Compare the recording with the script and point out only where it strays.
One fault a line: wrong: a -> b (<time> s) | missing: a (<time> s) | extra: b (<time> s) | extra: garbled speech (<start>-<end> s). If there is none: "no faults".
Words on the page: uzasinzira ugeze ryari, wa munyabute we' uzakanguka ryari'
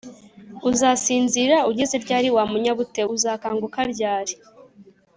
missing: we (3.0 s)